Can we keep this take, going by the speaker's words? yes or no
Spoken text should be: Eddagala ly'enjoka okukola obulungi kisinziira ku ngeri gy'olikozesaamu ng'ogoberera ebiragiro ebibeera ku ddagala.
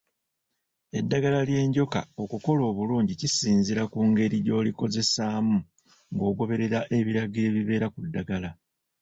yes